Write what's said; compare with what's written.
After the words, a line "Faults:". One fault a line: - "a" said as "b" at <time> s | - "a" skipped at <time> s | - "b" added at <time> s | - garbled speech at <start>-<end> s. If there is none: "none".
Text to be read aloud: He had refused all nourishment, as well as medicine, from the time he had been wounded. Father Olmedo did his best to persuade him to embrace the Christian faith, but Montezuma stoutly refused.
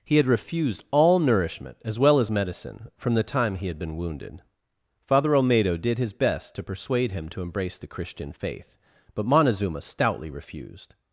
He had refused all nourishment, as well as medicine, from the time he had been wounded. Father Olmedo did his best to persuade him to embrace the Christian faith, but Montezuma stoutly refused.
Faults:
none